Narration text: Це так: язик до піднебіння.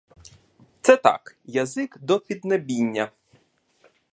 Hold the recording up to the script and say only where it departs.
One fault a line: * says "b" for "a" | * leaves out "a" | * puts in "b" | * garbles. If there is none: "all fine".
all fine